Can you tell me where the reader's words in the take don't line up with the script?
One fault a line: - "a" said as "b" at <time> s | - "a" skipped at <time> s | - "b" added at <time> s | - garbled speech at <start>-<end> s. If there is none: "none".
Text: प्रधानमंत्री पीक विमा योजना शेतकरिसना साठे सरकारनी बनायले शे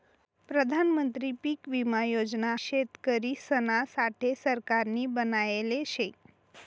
none